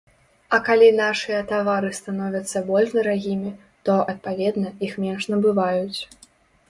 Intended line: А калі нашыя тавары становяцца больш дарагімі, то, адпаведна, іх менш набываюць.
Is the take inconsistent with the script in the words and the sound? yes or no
no